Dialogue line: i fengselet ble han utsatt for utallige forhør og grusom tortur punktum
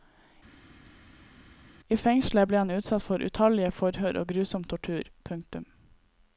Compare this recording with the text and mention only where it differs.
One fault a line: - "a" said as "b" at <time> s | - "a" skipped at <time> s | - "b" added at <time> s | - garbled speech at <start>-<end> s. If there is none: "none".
none